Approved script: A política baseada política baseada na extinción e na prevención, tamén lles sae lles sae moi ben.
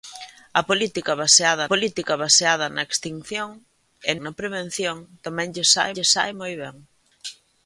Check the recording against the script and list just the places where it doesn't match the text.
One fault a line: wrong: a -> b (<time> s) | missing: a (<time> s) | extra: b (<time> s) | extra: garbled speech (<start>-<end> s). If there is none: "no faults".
no faults